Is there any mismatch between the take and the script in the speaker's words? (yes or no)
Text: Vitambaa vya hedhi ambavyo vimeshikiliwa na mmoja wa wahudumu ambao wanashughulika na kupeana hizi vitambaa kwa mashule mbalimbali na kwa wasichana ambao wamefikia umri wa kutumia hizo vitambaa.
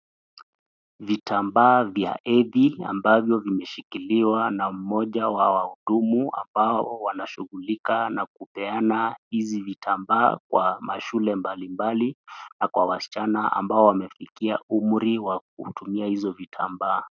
no